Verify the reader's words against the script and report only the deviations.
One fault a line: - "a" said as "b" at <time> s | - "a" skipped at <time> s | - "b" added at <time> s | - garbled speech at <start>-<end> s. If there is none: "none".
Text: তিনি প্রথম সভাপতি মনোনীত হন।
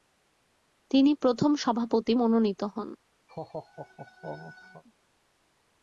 none